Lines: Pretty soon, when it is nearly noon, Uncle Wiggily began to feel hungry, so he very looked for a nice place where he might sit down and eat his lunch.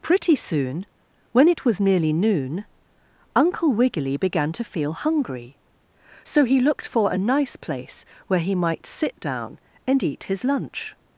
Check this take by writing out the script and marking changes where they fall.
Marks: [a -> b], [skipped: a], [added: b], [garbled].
Pretty soon, when it [is -> was] nearly noon, Uncle Wiggily began to feel hungry, so he [skipped: very] looked for a nice place where he might sit down and eat his lunch.